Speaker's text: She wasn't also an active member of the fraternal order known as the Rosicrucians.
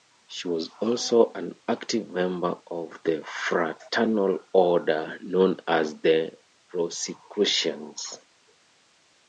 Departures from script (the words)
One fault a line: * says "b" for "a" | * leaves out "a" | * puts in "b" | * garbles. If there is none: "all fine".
* says "was" for "wasn't"